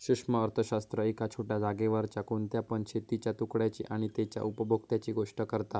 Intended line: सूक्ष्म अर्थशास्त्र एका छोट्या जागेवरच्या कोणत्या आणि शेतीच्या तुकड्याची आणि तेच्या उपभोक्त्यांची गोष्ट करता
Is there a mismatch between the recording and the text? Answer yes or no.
yes